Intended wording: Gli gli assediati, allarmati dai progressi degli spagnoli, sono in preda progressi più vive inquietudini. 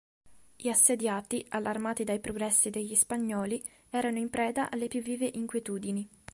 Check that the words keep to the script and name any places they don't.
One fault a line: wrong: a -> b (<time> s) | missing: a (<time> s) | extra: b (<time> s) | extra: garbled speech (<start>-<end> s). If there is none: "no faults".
missing: gli (0.7 s)
wrong: sono -> erano (3.9 s)
wrong: progressi -> alle (4.7 s)